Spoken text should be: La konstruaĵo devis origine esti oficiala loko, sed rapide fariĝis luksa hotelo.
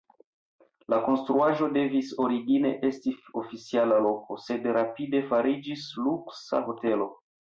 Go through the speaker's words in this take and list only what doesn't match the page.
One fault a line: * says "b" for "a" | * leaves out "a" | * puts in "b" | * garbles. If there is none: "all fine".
all fine